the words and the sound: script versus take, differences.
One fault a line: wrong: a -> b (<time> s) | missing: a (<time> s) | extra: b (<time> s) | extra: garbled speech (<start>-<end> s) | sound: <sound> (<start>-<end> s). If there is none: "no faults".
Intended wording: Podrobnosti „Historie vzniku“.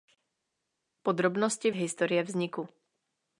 no faults